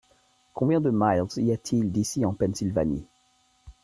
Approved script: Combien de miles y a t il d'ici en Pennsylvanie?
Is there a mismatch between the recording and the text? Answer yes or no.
no